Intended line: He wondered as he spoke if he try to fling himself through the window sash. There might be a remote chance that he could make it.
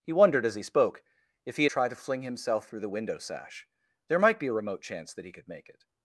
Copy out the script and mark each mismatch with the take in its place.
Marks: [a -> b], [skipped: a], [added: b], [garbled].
He wondered as he spoke if he try to fling himself through the window sash. There might be a remote chance that he could make it.